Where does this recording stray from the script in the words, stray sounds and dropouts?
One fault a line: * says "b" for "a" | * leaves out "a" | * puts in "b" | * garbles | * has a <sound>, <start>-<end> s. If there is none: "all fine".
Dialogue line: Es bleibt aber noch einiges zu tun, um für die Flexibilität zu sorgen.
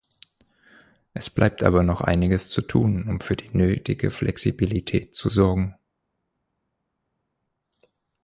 * puts in "nötige"